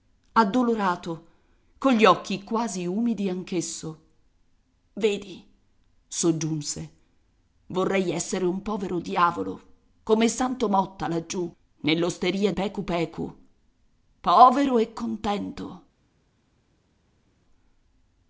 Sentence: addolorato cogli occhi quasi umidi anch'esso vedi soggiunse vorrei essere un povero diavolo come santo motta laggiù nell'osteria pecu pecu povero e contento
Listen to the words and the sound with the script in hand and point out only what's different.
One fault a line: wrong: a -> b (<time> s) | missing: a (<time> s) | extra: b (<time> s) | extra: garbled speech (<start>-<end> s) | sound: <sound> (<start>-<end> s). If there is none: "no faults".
no faults